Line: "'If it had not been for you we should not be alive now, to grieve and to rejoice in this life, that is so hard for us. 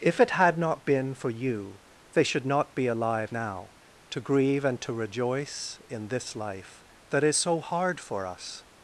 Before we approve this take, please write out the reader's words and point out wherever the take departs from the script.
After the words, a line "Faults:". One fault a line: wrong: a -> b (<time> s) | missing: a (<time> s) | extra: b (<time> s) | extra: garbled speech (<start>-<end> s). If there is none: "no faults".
"'If it had not been for you they should not be alive now, to grieve and to rejoice in this life, that is so hard for us.
Faults:
wrong: we -> they (2.1 s)